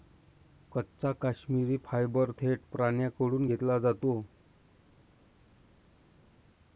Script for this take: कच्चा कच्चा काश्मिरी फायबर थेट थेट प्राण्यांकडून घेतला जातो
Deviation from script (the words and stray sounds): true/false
true